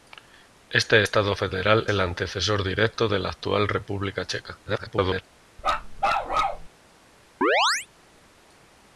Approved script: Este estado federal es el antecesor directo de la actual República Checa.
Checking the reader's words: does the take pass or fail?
fail